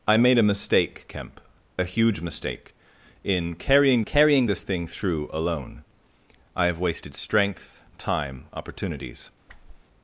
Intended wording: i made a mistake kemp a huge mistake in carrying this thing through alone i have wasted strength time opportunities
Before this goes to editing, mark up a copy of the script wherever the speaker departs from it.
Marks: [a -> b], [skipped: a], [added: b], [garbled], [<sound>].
i made a mistake kemp a huge mistake in carrying [added: carrying] this thing through alone i have wasted strength time opportunities [whoosh]